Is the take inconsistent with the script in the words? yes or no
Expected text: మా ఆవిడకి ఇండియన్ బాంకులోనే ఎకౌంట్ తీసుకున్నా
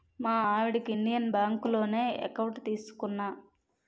no